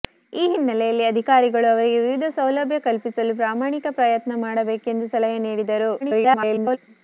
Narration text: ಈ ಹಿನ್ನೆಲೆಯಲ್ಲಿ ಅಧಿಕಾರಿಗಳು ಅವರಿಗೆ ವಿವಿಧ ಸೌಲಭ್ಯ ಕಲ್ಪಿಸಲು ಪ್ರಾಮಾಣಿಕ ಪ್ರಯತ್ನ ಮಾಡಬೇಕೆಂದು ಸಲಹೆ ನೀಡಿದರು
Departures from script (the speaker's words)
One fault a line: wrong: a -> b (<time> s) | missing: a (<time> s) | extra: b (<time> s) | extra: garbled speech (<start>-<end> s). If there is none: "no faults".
extra: garbled speech (6.0-6.8 s)